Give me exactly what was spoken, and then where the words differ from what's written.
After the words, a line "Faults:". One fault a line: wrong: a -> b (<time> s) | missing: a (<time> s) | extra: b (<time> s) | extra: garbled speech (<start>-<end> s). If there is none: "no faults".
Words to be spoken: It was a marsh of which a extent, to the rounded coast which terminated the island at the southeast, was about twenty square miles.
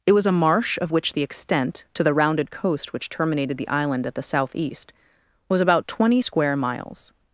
It was a marsh of which the extent, to the rounded coast which terminated the island at the southeast, was about twenty square miles.
Faults:
wrong: a -> the (1.1 s)